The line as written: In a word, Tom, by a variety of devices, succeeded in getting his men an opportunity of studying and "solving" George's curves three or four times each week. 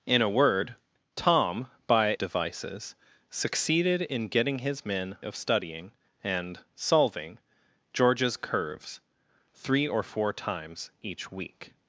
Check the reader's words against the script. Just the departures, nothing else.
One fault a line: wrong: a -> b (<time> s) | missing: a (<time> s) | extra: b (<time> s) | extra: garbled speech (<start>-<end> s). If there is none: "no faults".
missing: a variety of (2.1 s)
missing: an opportunity (5.2 s)